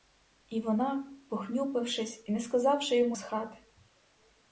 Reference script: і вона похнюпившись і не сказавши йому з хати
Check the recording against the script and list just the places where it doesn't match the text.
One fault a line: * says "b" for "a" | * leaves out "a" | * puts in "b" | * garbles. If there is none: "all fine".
all fine